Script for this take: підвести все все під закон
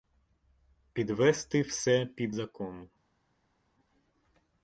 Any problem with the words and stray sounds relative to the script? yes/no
yes